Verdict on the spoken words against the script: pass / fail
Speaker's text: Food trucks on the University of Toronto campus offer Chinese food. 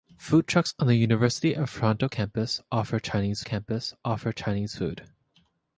fail